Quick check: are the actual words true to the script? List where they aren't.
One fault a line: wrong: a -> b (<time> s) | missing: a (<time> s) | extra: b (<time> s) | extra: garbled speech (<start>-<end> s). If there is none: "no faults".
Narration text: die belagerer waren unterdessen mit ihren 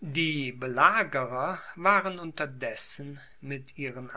no faults